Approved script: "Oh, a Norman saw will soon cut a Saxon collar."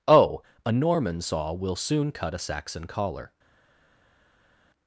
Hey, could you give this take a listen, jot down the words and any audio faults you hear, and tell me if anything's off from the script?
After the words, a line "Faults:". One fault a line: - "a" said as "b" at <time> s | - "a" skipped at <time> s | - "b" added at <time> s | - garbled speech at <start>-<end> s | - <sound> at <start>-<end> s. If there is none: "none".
"Oh, a Norman saw will soon cut a Saxon collar."
Faults:
none